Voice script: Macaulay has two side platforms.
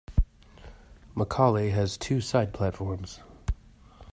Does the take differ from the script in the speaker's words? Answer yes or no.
no